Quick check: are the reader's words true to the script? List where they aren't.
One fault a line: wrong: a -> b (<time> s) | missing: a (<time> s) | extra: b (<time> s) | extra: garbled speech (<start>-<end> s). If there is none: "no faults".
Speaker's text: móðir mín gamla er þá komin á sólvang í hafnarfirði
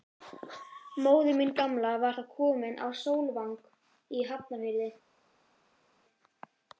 wrong: er -> var (2.0 s)